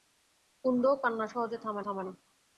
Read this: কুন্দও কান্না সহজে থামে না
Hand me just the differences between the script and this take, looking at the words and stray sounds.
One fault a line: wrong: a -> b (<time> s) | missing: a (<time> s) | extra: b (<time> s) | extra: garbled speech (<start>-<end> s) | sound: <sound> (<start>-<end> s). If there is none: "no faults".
extra: থামে (1.8 s)